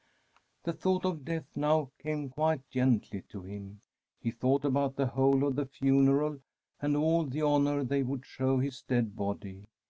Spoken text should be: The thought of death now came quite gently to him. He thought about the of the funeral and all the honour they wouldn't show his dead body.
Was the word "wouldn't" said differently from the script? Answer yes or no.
yes